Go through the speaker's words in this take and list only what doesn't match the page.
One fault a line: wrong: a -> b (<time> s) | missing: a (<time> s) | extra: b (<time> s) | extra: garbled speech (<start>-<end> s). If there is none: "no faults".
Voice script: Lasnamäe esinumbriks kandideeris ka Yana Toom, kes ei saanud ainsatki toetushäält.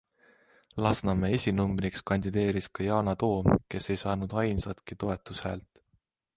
no faults